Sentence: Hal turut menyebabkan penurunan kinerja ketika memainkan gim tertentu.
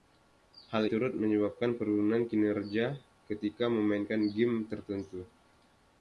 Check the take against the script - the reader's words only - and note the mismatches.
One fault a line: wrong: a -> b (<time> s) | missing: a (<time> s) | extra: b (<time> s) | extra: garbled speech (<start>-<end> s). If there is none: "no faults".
no faults